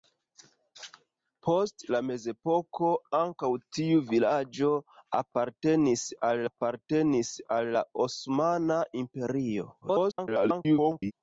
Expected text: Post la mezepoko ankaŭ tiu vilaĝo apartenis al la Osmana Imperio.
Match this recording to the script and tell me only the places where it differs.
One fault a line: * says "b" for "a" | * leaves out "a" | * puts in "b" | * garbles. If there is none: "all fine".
* puts in "apartenis al"
* garbles